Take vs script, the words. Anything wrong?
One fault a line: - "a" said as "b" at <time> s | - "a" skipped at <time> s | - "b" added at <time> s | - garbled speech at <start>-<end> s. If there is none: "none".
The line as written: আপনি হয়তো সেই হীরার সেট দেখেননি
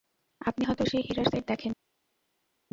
none